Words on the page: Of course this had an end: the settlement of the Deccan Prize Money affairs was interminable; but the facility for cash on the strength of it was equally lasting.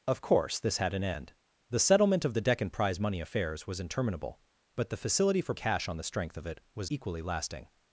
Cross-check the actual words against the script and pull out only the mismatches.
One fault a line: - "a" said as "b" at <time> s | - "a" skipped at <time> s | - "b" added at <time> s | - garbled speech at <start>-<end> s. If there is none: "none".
none